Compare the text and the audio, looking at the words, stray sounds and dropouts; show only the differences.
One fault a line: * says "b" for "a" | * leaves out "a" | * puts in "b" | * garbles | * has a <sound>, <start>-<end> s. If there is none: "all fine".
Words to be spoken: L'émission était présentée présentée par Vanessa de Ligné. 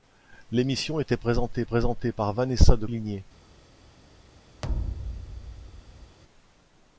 * has a thud, 4.6-6.2 s